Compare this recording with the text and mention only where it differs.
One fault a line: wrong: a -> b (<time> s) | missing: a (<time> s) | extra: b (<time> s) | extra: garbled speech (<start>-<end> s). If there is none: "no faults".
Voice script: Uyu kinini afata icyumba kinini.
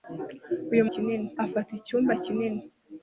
no faults